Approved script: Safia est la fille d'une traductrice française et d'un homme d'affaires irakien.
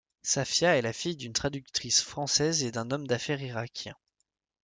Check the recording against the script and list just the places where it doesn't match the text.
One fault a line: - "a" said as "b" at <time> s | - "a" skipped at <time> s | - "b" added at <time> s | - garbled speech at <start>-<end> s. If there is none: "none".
none